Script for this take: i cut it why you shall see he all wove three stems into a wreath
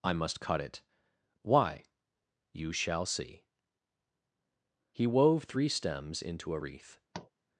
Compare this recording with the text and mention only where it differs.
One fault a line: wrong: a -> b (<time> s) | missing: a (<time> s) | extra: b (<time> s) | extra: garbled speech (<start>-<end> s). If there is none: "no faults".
extra: must (0.1 s)
missing: all (5.1 s)